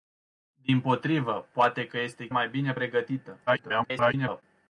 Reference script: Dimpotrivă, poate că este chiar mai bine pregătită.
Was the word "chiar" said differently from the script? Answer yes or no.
yes